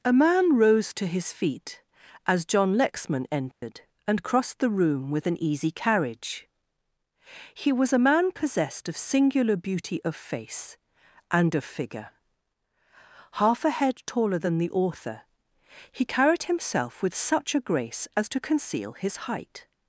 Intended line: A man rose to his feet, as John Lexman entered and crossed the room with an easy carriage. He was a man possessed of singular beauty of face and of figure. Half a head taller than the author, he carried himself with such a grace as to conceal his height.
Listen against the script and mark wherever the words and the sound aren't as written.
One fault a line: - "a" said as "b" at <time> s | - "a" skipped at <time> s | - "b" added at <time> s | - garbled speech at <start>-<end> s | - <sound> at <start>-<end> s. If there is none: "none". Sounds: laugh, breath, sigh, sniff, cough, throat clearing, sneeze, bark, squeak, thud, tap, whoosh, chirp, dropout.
- dropout at 3.5-3.6 s